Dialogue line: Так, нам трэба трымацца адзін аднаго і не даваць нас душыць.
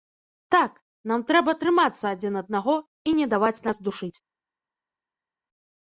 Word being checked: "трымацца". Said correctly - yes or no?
yes